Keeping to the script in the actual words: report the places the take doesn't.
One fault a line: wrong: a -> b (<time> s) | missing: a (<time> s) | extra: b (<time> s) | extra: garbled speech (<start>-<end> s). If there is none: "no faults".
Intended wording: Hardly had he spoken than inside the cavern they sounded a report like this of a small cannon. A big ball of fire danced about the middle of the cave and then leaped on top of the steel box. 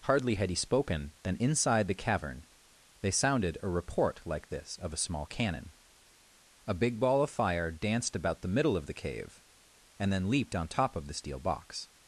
no faults